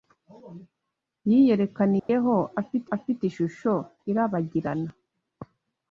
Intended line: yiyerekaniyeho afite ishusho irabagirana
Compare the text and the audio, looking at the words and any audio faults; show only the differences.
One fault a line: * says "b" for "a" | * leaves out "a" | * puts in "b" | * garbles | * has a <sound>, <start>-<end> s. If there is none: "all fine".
* has a dropout, 2.0-2.1 s
* puts in "afite"